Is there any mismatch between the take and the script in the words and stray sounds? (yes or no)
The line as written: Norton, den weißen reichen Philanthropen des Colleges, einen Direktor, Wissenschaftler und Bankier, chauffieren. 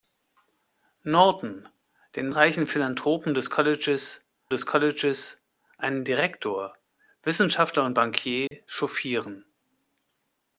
yes